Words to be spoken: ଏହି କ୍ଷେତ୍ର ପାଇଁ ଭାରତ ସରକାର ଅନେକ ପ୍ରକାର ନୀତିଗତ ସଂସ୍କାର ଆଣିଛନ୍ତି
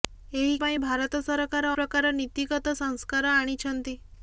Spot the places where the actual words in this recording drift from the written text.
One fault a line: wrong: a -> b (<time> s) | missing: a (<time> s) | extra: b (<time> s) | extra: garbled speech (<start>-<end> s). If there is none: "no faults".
missing: କ୍ଷେତ୍ର (0.5 s)
missing: ଅନେକ (1.7 s)